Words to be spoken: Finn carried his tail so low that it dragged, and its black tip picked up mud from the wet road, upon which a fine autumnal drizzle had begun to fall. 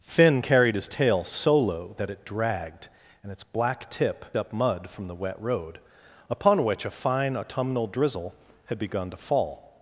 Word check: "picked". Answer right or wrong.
wrong